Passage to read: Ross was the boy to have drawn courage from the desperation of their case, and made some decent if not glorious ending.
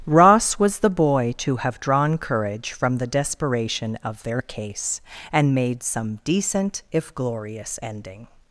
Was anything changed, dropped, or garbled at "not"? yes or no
yes